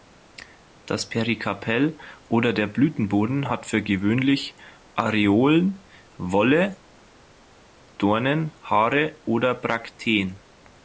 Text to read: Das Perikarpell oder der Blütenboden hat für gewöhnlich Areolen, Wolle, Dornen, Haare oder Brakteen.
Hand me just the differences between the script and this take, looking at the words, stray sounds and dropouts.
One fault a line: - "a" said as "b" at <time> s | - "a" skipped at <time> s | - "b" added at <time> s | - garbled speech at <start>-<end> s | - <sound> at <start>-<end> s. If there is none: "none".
none